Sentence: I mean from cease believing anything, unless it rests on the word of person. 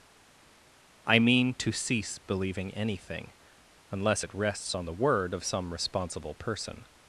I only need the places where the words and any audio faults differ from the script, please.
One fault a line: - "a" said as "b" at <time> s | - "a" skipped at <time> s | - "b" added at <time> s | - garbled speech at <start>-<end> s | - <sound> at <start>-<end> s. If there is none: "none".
- "from" said as "to" at 1.5 s
- "some responsible" added at 5.5 s